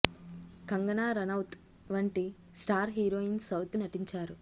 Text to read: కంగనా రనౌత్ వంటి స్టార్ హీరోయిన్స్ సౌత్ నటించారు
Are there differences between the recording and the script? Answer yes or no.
no